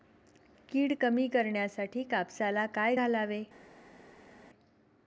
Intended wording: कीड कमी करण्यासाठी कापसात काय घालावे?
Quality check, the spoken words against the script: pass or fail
pass